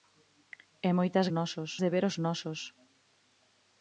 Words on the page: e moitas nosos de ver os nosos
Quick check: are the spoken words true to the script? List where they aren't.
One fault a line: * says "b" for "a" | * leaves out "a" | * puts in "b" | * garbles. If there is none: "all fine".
all fine